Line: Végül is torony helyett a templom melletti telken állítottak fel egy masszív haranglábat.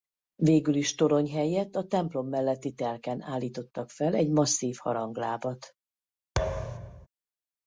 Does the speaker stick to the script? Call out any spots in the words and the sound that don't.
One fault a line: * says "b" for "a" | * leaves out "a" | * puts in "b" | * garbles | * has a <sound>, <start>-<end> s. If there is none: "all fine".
* has a thud, 6.4-7.1 s